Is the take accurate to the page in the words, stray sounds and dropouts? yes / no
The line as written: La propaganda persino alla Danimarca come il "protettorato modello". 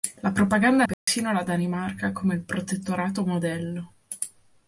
no